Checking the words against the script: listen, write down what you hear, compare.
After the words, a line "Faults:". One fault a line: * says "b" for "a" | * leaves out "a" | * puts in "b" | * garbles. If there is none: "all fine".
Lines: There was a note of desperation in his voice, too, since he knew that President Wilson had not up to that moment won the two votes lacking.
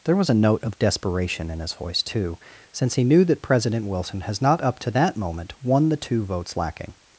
There was a note of desperation in his voice, too, since he knew that President Wilson has not up to that moment won the two votes lacking.
Faults:
* says "has" for "had"